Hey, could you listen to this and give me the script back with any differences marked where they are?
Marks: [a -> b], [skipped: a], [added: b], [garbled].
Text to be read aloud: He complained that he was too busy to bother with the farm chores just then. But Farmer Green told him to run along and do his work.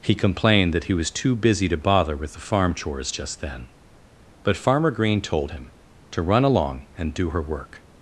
He complained that he was too busy to bother with the farm chores just then. But Farmer Green told him to run along and do [his -> her] work.